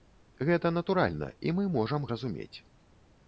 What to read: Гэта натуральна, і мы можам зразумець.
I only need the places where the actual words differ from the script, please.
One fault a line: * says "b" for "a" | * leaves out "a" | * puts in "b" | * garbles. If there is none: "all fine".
all fine